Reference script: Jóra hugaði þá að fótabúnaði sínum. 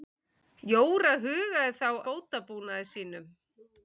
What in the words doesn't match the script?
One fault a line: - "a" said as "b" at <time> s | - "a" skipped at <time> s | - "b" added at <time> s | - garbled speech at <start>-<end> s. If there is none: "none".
- "að" skipped at 1.9 s